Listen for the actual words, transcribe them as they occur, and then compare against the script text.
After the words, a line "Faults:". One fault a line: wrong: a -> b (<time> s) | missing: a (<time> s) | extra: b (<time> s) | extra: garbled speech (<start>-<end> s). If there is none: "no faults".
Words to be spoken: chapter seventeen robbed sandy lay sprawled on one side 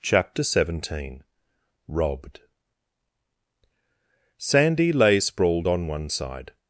chapter seventeen robbed sandy lay sprawled on one side
Faults:
no faults